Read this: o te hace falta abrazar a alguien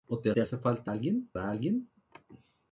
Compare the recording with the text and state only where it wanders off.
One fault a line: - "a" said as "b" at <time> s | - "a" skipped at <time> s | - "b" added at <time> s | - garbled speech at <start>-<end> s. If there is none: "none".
- "te" added at 0.3 s
- "abrazar" said as "alguien" at 0.9 s